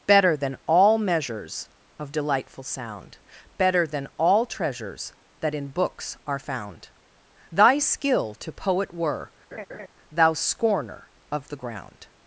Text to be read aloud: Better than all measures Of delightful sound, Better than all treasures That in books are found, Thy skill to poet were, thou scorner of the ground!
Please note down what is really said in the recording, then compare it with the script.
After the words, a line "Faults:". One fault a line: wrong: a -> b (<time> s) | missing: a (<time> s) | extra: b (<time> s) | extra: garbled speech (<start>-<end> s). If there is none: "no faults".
Better than all measures Of delightful sound, Better than all treasures That in books are found, Thy skill to poet were, thou scorner of the ground!
Faults:
no faults